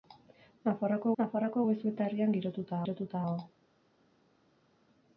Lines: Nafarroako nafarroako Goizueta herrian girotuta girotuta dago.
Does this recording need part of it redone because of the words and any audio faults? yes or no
no